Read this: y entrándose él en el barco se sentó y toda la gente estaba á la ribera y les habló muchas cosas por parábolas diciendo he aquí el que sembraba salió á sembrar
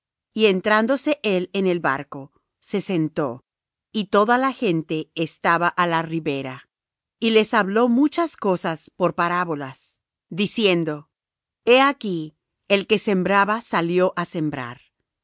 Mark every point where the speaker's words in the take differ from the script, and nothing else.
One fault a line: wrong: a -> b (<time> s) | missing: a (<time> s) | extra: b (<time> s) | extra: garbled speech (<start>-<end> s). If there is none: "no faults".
no faults